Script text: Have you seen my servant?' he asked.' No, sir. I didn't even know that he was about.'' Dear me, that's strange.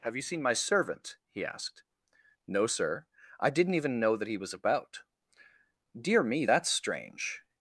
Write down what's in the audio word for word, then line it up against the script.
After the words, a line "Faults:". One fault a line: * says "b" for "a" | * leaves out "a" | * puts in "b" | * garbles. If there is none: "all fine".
Have you seen my servant?' he asked.' No, sir. I didn't even know that he was about.'' Dear me, that's strange.
Faults:
all fine